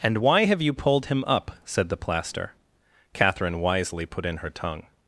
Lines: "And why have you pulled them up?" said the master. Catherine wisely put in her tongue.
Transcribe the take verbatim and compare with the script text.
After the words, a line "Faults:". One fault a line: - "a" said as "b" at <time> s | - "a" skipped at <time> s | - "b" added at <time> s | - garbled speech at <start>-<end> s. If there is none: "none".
"And why have you pulled him up?" said the plaster. Catherine wisely put in her tongue.
Faults:
- "them" said as "him" at 1.1 s
- "master" said as "plaster" at 2.0 s